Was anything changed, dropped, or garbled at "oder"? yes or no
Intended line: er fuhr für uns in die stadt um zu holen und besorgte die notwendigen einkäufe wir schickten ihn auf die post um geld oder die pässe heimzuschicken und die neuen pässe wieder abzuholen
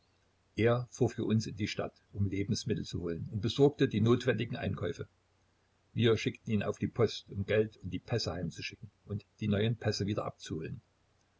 yes